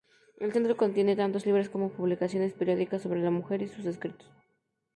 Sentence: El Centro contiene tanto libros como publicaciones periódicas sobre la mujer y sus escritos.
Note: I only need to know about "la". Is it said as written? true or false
true